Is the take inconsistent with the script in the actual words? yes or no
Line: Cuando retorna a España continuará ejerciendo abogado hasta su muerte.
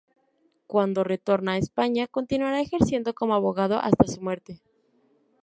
yes